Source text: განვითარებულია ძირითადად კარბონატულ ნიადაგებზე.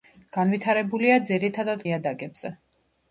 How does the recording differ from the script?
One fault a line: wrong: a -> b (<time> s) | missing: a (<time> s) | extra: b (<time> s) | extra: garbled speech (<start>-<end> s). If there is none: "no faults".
missing: კარბონატულ (1.8 s)